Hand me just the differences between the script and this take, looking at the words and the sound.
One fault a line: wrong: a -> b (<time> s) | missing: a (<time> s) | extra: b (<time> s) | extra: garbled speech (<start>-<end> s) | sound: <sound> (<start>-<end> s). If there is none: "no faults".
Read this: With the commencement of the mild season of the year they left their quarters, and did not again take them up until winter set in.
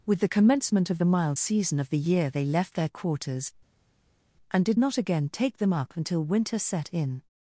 no faults